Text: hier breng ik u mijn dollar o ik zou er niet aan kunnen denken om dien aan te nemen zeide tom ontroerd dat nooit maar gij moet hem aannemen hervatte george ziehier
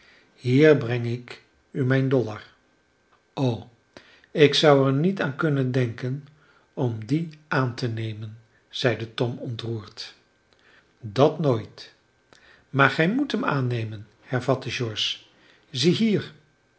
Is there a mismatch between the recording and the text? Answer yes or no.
no